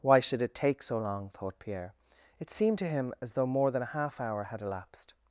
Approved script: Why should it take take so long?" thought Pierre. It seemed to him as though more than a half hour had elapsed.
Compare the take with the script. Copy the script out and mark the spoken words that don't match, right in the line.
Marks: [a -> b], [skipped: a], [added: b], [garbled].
Why should it take [skipped: take] so long?" thought Pierre. It seemed to him as though more than a half hour had elapsed.